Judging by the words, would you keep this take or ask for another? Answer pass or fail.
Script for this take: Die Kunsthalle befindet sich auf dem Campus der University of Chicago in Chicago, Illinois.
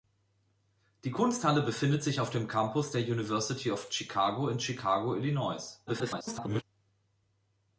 fail